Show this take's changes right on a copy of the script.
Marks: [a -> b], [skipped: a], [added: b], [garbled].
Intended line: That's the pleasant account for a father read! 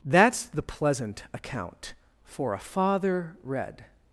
That's the pleasant account for a father read!